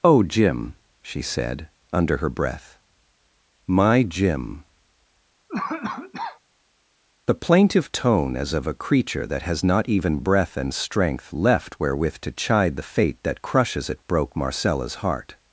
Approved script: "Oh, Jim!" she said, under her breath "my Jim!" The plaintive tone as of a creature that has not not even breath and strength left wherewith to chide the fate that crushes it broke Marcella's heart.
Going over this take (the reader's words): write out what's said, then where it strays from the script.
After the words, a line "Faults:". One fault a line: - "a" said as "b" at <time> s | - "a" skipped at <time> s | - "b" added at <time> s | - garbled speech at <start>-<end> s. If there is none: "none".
"Oh, Jim!" she said, under her breath "my Jim!" The plaintive tone as of a creature that has not even breath and strength left wherewith to chide the fate that crushes it broke Marcella's heart.
Faults:
- "not" skipped at 9.9 s